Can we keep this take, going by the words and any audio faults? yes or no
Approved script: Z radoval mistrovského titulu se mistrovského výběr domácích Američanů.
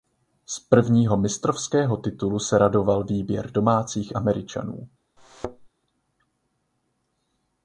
no